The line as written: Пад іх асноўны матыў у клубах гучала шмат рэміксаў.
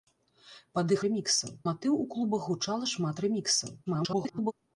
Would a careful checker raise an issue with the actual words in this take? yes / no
yes